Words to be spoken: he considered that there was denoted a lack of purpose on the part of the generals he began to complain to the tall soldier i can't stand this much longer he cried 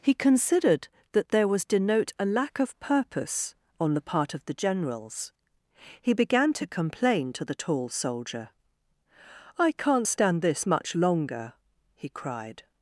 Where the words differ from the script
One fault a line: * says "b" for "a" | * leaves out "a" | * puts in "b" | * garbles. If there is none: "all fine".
* says "denote" for "denoted"